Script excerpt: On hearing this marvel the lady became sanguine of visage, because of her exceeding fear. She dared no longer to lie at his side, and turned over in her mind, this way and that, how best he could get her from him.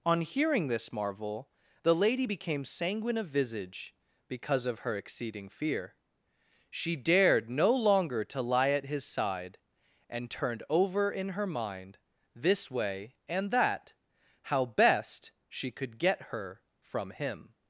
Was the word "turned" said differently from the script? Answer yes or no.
no